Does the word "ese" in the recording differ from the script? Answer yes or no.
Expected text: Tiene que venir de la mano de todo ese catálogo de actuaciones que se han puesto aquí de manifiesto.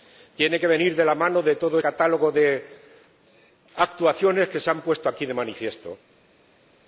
yes